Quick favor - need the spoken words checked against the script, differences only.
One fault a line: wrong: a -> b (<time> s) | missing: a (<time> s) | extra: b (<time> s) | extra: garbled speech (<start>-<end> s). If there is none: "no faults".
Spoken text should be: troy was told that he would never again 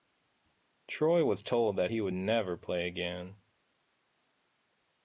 extra: play (2.5 s)